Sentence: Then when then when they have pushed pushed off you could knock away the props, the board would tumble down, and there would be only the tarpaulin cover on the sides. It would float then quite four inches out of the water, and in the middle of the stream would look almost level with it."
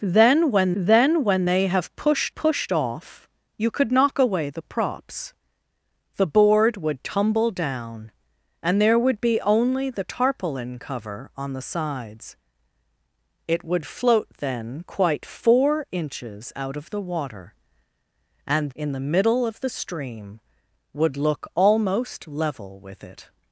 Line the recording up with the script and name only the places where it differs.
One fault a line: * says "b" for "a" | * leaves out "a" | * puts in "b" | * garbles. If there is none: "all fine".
all fine